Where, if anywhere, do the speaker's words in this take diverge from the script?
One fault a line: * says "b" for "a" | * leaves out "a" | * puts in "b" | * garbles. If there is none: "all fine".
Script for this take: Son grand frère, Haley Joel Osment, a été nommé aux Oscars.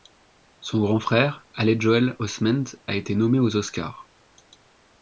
all fine